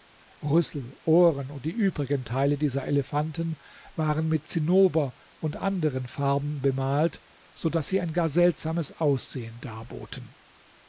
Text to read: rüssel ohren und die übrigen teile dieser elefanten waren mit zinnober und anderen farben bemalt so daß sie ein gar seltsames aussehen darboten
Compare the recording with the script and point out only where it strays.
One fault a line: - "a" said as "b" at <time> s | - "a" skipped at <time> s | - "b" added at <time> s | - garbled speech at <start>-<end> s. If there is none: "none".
none